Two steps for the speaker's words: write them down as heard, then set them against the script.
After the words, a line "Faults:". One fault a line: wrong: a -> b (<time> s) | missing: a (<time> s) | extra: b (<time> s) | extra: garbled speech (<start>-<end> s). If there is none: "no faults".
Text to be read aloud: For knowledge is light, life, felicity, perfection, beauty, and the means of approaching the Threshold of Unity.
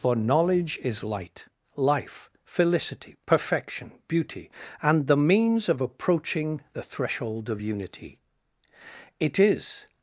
For knowledge is light, life, felicity, perfection, beauty, and the means of approaching the Threshold of Unity. It is
Faults:
extra: It is (9.2 s)